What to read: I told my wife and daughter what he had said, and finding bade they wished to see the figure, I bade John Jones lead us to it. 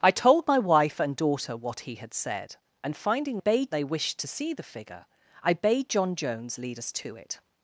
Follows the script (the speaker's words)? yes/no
yes